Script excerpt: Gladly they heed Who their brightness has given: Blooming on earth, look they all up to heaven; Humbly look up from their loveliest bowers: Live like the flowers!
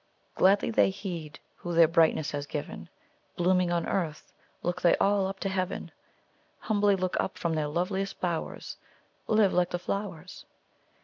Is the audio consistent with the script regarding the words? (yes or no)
yes